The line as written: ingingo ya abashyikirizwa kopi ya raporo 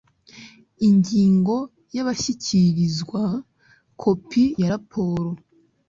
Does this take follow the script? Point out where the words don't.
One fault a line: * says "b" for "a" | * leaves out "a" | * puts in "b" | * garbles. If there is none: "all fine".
all fine